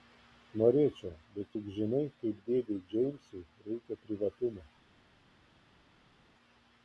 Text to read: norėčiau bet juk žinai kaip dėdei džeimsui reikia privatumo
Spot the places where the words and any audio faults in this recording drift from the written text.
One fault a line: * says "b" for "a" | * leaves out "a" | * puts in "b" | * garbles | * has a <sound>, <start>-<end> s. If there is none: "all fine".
all fine